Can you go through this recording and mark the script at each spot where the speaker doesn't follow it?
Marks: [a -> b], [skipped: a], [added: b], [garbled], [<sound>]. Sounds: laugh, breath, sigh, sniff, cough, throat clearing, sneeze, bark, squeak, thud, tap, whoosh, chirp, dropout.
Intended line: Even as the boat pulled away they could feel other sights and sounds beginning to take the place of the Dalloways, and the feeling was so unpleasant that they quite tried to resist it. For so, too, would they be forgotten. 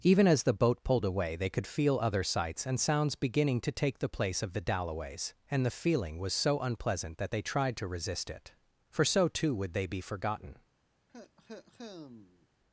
Even as the boat pulled away they could feel other sights and sounds beginning to take the place of the Dalloways, and the feeling was so unpleasant that they [skipped: quite] tried to resist it. For so, too, would they be forgotten. [cough]